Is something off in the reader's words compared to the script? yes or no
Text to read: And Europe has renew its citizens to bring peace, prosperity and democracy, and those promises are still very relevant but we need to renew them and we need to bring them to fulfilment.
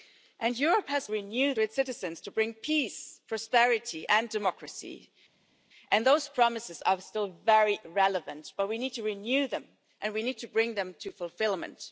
no